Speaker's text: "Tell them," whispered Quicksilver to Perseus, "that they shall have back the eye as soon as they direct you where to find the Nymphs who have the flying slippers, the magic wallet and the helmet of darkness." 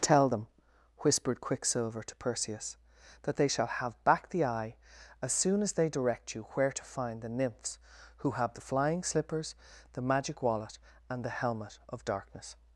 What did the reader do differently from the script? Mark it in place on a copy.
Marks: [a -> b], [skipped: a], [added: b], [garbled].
"Tell them," whispered Quicksilver to Perseus, "that they shall have back the eye as soon as they direct you where to find the Nymphs who have the flying slippers, the magic wallet and the helmet of darkness."